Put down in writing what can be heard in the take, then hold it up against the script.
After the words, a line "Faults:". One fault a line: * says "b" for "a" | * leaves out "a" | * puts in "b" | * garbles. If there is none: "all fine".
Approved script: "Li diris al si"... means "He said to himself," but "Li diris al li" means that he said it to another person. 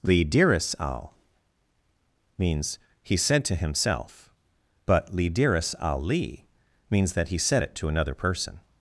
"Li diris al"... means "He said to himself," but "Li diris al li" means that he said it to another person.
Faults:
* leaves out "si"